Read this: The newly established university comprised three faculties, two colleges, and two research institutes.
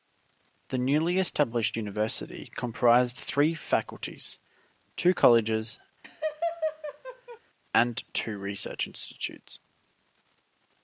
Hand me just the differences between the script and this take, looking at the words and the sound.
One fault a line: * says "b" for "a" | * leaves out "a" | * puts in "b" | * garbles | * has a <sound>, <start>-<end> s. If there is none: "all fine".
* has a laugh, 6.0-7.4 s